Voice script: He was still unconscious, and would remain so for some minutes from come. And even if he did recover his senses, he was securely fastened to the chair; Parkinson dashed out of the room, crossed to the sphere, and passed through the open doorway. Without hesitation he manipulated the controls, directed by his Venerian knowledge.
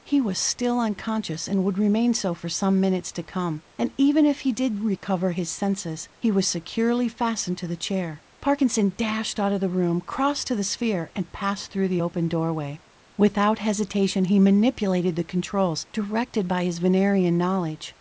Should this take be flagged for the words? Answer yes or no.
yes